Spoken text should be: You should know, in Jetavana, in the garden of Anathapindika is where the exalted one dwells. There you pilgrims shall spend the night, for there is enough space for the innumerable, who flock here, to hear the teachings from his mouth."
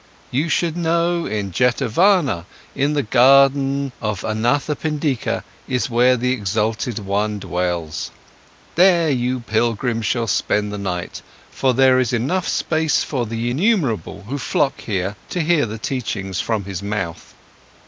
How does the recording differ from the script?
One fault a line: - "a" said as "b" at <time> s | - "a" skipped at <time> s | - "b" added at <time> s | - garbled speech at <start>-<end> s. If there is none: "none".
none